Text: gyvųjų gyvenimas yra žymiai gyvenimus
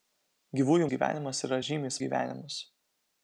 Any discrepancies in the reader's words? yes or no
no